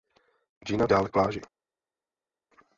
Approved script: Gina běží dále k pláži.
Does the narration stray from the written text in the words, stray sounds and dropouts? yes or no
yes